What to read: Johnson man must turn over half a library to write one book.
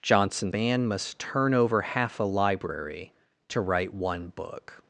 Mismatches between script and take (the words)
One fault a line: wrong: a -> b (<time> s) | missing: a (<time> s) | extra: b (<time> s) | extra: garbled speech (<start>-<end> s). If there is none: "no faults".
no faults